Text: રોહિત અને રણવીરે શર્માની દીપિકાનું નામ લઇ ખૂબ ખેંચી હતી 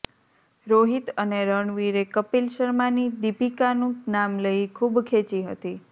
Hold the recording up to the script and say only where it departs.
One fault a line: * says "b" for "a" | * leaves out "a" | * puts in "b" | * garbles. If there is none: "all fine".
* puts in "કપિલ"